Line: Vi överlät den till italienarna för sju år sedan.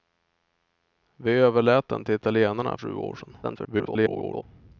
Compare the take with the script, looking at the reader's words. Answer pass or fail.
fail